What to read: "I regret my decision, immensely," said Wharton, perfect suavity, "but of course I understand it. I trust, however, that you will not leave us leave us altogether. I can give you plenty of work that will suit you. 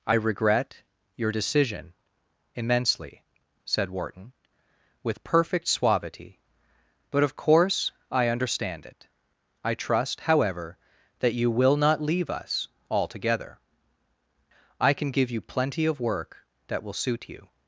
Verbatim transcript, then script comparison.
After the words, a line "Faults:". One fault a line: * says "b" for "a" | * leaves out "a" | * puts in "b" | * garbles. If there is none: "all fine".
"I regret your decision, immensely," said Wharton, with perfect suavity, "but of course I understand it. I trust, however, that you will not leave us altogether. I can give you plenty of work that will suit you.
Faults:
* says "your" for "my"
* puts in "with"
* leaves out "leave us"